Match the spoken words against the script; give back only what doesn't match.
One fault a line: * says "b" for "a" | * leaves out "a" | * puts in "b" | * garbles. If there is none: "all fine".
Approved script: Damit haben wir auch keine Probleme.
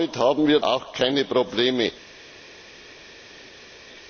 all fine